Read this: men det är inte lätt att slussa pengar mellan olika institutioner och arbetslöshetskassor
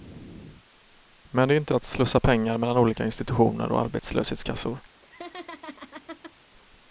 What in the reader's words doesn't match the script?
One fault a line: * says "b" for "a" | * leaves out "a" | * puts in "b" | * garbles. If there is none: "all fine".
* leaves out "lätt"